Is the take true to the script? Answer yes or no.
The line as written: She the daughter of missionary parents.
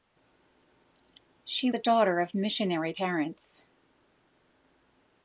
yes